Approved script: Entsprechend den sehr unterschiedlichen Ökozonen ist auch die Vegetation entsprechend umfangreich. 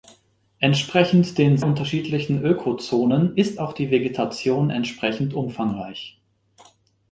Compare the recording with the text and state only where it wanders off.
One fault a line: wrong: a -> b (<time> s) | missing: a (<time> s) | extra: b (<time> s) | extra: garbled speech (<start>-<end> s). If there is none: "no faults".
missing: sehr (1.6 s)